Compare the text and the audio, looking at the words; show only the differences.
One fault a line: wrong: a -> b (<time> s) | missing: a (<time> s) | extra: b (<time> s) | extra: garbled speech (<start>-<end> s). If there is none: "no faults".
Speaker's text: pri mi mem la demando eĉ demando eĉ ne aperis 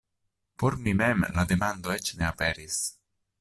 wrong: pri -> por (0.6 s)
missing: demando eĉ (2.2 s)